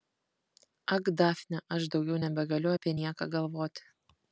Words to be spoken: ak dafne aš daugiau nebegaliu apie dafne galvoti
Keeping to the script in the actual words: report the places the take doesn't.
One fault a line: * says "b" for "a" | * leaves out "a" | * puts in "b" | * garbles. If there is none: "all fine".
* says "nieką" for "dafne"